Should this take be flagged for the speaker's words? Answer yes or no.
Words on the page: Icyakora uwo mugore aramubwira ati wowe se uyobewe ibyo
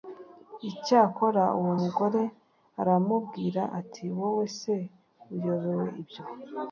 no